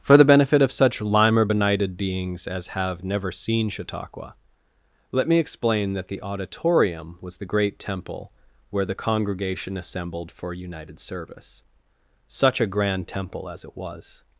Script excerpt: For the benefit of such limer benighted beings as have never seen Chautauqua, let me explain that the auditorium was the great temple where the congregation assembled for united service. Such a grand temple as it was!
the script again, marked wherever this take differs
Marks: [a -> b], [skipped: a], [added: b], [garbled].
For the benefit of such limer benighted beings as have never seen Chautauqua, let me explain that the auditorium was the great temple where the congregation assembled for united service. Such a grand temple as it was!